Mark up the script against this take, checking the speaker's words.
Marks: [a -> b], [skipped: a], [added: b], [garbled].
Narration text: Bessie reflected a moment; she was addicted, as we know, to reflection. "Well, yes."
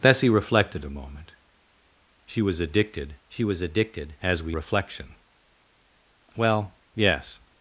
Bessie reflected a moment; she was addicted, [added: she was addicted] as we [skipped: know, to] reflection. "Well, yes."